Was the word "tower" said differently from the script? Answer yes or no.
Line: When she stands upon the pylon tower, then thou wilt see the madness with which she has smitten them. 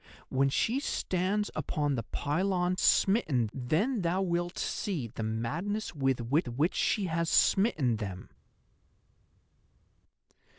yes